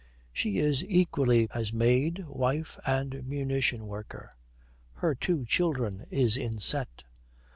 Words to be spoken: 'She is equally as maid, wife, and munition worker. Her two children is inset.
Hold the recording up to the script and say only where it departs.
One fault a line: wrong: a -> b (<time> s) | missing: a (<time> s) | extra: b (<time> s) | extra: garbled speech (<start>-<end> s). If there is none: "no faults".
no faults